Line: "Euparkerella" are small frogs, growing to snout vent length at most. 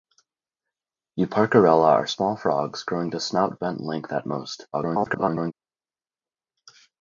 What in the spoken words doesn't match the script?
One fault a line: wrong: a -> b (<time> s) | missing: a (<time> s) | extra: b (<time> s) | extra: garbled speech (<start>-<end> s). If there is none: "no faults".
extra: garbled speech (4.7-5.5 s)